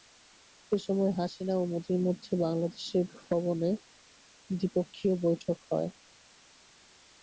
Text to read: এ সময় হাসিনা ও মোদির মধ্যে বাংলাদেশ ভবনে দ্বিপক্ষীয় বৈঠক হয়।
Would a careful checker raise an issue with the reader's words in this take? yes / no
no